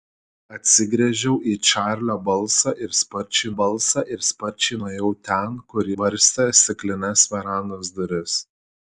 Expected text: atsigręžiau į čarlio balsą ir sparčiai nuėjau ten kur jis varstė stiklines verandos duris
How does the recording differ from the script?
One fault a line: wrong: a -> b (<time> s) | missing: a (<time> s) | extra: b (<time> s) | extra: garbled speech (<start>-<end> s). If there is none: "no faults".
extra: balsą ir sparčiai (3.6 s)
missing: jis (5.9 s)